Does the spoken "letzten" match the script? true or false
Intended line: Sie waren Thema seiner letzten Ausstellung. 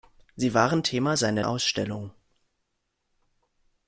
false